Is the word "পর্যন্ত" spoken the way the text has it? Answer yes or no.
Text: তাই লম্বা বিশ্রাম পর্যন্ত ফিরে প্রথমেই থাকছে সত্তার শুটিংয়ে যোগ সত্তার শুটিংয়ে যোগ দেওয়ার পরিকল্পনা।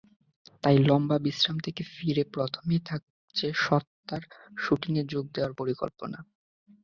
no